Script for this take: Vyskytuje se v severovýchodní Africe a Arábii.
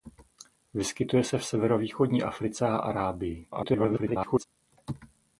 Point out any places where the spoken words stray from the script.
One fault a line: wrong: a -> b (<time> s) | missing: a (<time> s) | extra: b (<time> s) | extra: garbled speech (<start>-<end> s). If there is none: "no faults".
extra: garbled speech (3.5-4.4 s)